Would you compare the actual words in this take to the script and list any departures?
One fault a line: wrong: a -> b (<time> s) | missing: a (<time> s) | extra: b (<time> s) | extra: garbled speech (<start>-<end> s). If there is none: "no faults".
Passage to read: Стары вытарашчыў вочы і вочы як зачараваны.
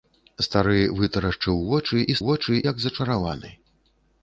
no faults